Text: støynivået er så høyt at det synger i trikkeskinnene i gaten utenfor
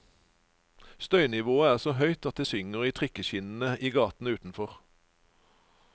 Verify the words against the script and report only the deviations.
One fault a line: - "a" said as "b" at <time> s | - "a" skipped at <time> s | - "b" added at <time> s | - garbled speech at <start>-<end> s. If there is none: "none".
none